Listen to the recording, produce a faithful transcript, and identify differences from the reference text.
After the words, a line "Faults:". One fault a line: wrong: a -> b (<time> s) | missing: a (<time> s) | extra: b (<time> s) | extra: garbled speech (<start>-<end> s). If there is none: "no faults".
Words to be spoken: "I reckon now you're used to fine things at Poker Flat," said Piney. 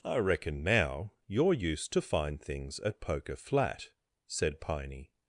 "I reckon now you're used to fine things at Poker Flat," said Piney.
Faults:
no faults